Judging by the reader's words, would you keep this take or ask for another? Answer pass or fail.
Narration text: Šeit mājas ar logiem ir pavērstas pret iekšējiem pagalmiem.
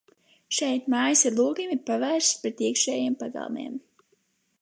pass